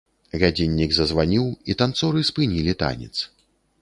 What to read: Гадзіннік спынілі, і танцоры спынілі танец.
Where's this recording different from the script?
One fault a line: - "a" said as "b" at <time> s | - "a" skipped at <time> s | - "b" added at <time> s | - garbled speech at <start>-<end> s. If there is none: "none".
- "спынілі" said as "зазваніў" at 1.0 s